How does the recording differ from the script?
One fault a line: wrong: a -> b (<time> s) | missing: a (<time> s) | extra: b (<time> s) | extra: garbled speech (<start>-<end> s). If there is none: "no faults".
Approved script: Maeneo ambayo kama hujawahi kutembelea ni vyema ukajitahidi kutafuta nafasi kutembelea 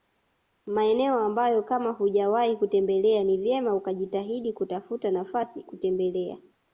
no faults